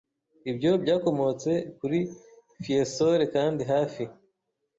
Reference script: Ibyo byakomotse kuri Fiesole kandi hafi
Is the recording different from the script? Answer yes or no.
no